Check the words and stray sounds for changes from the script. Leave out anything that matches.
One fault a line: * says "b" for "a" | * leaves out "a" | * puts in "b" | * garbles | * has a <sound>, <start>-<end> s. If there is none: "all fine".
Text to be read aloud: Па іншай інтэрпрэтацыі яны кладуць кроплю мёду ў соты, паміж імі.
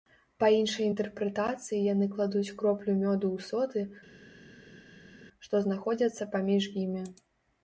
* puts in "што знаходзяцца"